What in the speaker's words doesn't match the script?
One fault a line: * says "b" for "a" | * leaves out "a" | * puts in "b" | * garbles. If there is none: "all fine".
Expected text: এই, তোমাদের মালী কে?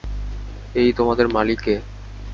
all fine